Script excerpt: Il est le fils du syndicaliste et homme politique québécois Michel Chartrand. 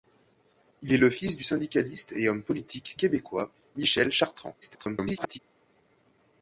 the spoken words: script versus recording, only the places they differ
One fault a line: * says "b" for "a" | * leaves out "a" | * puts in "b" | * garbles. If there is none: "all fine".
* garbles